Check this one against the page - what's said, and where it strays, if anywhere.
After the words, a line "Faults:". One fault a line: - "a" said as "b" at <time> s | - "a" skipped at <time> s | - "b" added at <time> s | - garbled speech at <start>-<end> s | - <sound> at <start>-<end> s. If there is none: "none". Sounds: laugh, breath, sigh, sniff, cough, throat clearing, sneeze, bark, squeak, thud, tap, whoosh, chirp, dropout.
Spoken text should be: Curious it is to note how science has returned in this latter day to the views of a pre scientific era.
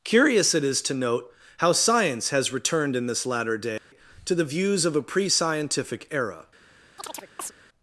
Curious it is to note how science has returned in this latter day to the views of a pre scientific era.
Faults:
- dropout at 3.8-3.9 s
- chirp at 7.0-7.5 s